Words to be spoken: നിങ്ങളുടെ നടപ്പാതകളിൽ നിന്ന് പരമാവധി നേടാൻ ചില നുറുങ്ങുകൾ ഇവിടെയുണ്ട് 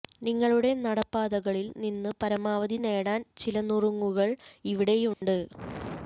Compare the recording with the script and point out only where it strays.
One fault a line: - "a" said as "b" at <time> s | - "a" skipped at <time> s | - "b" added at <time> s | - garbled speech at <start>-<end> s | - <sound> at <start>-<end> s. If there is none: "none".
- dropout at 5.1-5.2 s